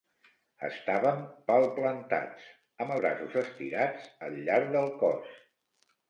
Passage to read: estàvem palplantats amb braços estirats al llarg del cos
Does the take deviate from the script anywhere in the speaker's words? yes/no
no